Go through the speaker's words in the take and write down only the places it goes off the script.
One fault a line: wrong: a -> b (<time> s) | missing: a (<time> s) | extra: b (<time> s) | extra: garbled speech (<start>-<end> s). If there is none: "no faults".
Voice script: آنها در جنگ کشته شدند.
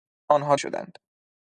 missing: در جنگ کشته (0.6 s)